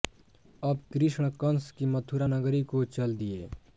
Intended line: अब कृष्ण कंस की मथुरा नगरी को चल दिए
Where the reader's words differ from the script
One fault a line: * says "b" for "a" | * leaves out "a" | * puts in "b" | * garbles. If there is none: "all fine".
all fine